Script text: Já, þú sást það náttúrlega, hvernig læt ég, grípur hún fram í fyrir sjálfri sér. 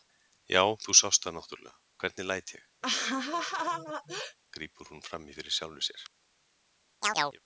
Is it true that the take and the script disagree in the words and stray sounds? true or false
true